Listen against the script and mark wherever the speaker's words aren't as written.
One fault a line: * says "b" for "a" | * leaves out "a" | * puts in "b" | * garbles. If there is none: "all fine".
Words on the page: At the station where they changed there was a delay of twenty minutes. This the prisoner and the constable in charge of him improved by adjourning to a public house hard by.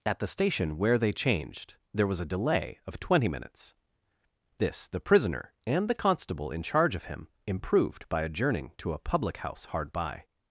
all fine